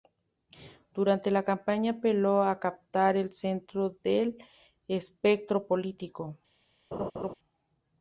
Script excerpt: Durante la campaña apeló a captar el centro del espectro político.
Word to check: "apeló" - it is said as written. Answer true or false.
true